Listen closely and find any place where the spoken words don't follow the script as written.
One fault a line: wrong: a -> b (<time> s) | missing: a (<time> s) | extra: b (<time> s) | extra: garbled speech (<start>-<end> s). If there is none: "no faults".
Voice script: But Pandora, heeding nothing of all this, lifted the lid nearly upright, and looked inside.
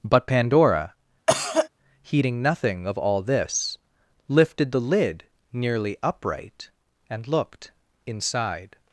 no faults